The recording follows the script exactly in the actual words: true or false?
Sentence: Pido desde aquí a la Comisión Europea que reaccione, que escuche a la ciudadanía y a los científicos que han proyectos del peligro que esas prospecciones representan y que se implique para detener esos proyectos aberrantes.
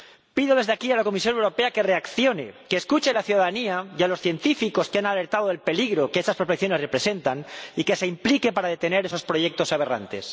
false